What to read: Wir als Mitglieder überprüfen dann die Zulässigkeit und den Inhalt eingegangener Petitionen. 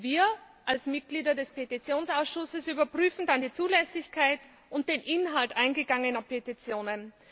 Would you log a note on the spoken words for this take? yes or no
yes